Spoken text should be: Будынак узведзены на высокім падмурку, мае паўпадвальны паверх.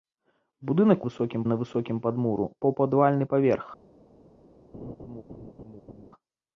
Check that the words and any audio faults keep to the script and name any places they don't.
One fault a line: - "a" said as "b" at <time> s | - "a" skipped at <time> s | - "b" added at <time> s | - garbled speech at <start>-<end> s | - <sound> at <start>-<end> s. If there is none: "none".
- "узведзены" said as "высокім" at 1.1 s
- "мае" skipped at 2.5 s
- laugh at 4.7-6.1 s